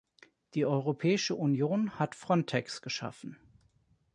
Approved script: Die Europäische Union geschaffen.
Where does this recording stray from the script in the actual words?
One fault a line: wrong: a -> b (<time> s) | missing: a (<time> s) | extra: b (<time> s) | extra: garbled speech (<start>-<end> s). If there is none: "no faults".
extra: hat Frontex (2.0 s)